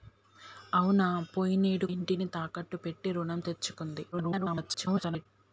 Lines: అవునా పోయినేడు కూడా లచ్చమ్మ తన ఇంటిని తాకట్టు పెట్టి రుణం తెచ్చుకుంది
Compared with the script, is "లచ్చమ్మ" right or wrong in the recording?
wrong